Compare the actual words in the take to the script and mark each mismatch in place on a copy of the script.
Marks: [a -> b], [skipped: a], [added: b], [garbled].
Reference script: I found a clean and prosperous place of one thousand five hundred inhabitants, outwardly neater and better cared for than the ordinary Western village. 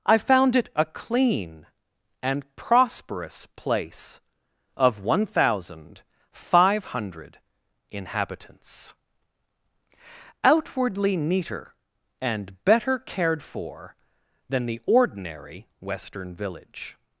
I found [added: it] a clean and prosperous place of one thousand five hundred inhabitants, outwardly neater and better cared for than the ordinary Western village.